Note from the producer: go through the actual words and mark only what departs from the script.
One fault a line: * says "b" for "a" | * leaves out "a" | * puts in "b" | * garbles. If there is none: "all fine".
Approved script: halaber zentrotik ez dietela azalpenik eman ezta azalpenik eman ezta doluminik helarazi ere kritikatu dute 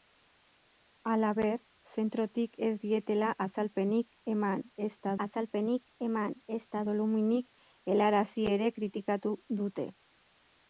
all fine